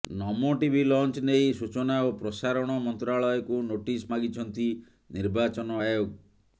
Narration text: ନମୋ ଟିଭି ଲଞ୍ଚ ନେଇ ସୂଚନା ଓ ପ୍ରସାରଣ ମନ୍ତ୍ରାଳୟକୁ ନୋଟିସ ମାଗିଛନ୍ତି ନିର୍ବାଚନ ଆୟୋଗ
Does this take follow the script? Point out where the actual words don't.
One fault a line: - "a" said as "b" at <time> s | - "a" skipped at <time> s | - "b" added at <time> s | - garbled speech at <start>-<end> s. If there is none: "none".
none